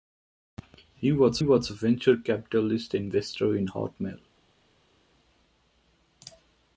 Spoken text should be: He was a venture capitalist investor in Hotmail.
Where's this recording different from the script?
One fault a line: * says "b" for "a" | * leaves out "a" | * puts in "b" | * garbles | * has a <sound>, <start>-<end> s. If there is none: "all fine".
* puts in "was"